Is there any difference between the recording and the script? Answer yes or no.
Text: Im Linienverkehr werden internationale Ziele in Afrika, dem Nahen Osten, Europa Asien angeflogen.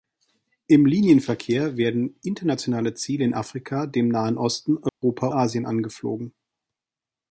no